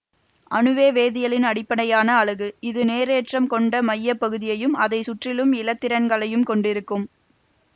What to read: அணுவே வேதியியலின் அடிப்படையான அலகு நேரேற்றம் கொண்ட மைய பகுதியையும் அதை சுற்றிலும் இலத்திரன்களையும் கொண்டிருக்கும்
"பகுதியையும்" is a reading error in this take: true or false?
false